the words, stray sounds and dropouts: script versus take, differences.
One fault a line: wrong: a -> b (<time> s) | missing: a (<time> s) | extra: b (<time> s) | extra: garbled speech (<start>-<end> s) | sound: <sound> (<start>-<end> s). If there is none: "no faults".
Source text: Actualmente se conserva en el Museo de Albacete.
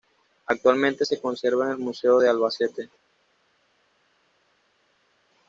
no faults